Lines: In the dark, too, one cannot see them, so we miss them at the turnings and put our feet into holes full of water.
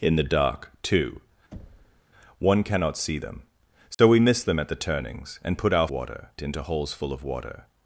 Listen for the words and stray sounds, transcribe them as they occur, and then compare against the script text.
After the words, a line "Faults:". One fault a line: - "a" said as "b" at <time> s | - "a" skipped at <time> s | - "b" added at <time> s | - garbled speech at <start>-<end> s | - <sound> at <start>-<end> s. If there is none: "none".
In the dark, too, one cannot see them, so we miss them at the turnings and put our water into holes full of water.
Faults:
- thud at 1.5-2.0 s
- dropout at 3.9-4.0 s
- "feet" said as "water" at 5.9 s